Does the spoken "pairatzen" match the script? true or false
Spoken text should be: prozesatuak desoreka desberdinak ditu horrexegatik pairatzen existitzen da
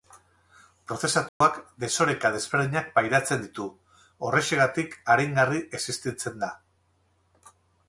false